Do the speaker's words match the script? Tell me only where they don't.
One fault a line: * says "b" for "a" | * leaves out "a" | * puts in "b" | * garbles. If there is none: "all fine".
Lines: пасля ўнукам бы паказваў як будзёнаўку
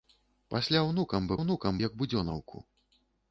* says "ўнукам" for "паказваў"